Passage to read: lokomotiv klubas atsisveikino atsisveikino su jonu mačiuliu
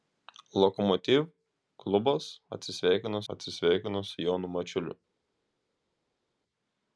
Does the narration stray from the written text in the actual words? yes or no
no